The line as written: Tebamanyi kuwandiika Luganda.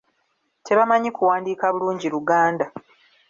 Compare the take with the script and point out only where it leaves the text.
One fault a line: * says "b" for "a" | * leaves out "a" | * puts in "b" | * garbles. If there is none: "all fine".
* puts in "bulungi"